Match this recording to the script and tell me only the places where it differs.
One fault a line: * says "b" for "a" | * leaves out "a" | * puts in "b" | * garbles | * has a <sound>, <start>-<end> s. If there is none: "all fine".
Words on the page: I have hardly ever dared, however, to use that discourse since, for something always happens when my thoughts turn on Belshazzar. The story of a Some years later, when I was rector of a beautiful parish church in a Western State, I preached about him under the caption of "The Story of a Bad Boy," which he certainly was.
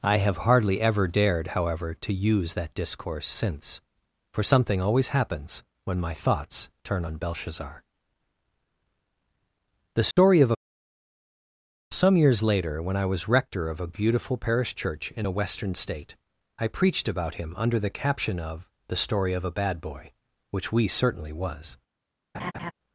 * has a dropout, 10.1-10.2 s
* says "we" for "he"
* has a laugh, 22.3-22.7 s